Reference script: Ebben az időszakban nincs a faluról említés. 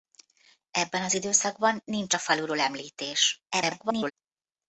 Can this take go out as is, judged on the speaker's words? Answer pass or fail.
fail